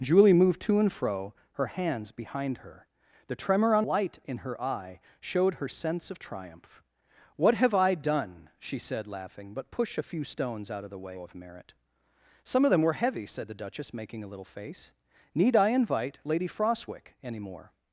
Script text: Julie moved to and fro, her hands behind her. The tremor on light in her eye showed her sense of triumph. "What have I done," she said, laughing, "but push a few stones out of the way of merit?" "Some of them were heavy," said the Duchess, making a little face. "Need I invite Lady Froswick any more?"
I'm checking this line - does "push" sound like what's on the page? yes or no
yes